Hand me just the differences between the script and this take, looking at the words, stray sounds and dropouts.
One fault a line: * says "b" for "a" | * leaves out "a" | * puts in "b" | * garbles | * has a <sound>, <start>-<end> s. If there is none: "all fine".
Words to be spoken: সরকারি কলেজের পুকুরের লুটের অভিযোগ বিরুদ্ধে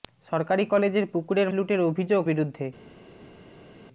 all fine